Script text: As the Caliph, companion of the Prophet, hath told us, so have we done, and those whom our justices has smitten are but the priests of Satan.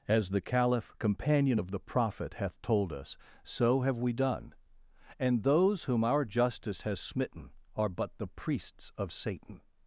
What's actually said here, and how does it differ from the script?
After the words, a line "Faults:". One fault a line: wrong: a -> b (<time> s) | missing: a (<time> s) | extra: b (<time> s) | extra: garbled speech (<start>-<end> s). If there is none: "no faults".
As the Caliph, companion of the Prophet, hath told us, so have we done, and those whom our justice has smitten are but the priests of Satan.
Faults:
wrong: justices -> justice (6.2 s)